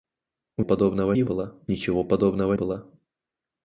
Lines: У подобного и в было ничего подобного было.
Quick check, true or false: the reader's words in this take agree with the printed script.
true